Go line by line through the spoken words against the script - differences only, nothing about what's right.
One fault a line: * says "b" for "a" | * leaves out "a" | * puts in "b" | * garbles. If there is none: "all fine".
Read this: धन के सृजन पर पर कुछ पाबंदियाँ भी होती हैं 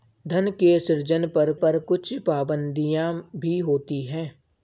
all fine